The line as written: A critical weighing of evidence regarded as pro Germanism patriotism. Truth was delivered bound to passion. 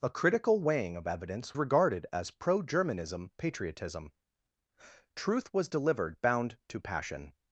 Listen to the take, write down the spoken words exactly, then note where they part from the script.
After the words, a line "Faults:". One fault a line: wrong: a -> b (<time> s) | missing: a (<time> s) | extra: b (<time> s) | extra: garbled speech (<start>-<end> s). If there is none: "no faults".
A critical weighing of evidence regarded as pro Germanism patriotism. Truth was delivered bound to passion.
Faults:
no faults